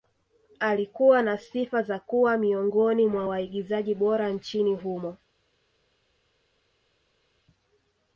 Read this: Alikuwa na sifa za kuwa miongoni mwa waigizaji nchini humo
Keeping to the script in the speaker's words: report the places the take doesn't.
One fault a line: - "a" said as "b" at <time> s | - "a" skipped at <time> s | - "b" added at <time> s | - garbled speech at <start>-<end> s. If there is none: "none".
- "bora" added at 3.9 s